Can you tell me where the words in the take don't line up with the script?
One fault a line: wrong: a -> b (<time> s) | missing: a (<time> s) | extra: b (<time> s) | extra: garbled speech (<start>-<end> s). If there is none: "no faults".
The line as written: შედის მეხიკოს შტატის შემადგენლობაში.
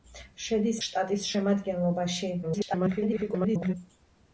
missing: მეხიკოს (0.8 s)
extra: garbled speech (2.4-3.7 s)